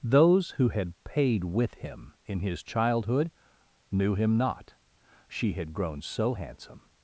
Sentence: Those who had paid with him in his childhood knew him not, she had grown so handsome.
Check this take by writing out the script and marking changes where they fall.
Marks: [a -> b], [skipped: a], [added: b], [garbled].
Those who had paid with him in his childhood knew him not, she had grown so handsome.